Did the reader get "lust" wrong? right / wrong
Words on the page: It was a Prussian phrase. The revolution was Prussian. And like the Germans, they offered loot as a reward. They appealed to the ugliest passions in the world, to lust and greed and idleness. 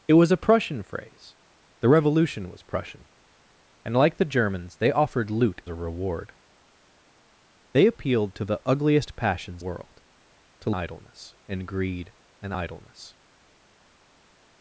wrong